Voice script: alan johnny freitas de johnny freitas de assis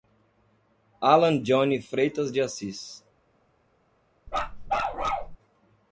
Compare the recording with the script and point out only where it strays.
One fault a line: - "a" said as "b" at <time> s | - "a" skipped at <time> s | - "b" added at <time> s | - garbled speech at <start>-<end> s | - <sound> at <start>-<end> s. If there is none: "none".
- "johnny freitas de" skipped at 2.4 s
- bark at 4.3-5.4 s